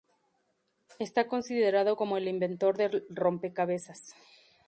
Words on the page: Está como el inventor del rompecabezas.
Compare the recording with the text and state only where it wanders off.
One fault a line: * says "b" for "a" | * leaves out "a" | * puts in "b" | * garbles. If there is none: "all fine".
* puts in "considerado"